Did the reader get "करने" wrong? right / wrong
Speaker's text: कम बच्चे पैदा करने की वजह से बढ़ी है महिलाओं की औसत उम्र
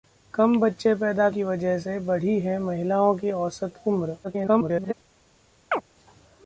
wrong